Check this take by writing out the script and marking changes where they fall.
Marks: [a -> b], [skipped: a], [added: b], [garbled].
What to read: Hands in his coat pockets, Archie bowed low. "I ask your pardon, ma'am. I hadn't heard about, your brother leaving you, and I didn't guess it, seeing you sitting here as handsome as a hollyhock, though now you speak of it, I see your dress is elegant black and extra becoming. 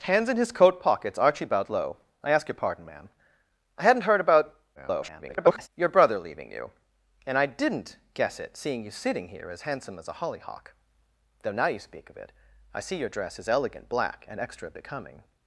Hands in his coat pockets, Archie bowed low. "I ask your pardon, ma'am. I hadn't heard about, [garbled] your brother leaving you, and I didn't guess it, seeing you sitting here as handsome as a hollyhock, though now you speak of it, I see your dress is elegant black and extra becoming.